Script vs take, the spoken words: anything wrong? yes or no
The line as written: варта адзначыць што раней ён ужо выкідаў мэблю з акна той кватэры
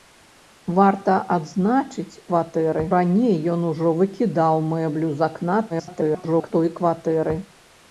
yes